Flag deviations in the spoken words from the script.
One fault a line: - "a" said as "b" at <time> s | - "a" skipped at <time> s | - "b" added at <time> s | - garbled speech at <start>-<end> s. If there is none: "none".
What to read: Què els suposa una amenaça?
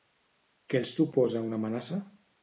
none